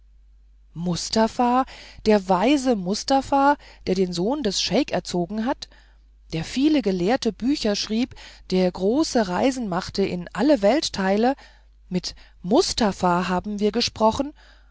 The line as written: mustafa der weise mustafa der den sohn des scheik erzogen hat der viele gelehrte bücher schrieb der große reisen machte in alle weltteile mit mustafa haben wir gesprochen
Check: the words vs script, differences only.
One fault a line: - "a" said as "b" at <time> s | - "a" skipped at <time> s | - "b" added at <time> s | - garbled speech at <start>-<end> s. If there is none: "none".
none